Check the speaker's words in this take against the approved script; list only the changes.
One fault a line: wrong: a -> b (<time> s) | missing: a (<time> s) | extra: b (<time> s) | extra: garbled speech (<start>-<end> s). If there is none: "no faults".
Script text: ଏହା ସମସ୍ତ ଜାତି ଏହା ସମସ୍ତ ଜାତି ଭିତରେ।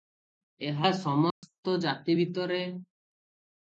missing: ଏହା ସମସ୍ତ ଜାତି (2.1 s)